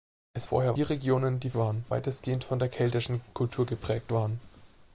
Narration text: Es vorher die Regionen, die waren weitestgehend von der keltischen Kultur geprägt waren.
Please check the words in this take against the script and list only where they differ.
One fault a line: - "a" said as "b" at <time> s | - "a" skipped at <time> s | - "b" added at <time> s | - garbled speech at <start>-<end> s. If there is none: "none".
none